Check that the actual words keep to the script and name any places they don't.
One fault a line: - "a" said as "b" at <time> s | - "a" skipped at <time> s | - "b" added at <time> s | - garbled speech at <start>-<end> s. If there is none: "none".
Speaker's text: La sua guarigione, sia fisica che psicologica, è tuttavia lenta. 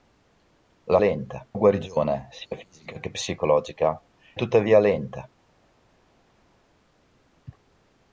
- "sua" said as "lenta" at 1.0 s
- "è" skipped at 4.0 s